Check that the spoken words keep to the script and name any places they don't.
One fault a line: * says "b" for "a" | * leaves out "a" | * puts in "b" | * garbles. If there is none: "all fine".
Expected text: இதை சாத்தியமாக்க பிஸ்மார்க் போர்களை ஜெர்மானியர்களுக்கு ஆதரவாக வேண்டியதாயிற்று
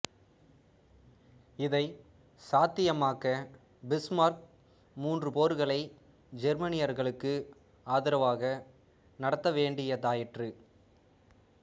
* puts in "மூன்று"
* puts in "நடத்த"